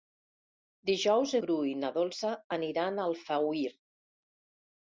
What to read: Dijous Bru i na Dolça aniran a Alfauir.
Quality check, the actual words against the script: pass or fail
pass